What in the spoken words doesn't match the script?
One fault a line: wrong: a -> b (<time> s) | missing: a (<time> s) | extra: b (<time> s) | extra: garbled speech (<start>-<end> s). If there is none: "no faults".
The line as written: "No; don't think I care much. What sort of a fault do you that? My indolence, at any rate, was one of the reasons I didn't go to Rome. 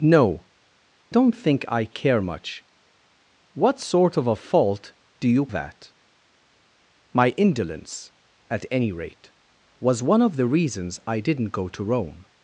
no faults